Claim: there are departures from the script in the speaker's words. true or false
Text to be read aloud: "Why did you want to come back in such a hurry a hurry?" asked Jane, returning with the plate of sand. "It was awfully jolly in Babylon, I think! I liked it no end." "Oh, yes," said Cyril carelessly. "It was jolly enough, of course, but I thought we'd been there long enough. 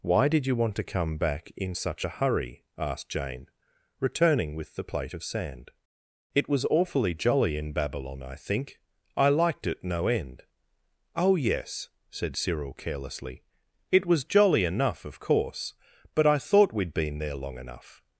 true